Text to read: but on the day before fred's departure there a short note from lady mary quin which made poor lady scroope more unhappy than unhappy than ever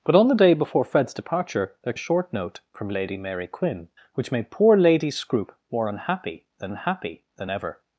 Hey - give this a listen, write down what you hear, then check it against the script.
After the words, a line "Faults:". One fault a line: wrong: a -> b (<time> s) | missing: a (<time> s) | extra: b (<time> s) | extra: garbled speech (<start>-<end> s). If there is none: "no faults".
but on the day before fred's departure there a short note from lady mary quin which made poor lady scroope more unhappy than unhappy than ever
Faults:
no faults